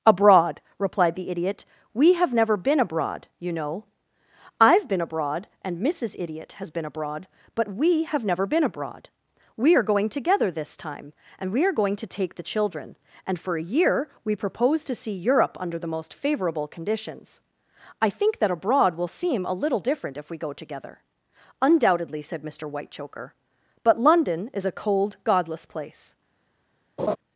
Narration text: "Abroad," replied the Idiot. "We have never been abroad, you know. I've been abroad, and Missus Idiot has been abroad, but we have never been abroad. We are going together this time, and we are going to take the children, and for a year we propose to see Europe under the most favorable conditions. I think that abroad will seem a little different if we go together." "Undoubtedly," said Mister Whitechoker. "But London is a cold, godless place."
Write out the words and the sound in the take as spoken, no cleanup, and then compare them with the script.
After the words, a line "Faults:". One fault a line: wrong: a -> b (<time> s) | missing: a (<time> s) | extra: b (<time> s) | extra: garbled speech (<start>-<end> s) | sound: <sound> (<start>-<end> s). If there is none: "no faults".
"Abroad," replied the Idiot. "We have never been abroad, you know. I've been abroad, and Missus Idiot has been abroad, but we have never been abroad. We are going together this time, and we are going to take the children, and for a year we propose to see Europe under the most favorable conditions. I think that abroad will seem a little different if we go together." "Undoubtedly," said Mister Whitechoker. "But London is a cold, godless place."
Faults:
sound: laugh (27.0-27.2 s)